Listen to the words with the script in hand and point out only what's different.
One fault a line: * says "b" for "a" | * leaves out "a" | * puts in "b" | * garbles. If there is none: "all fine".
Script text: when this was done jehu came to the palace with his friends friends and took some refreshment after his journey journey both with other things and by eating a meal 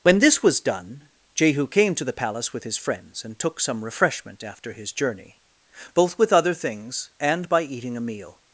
* leaves out "friends"
* leaves out "journey"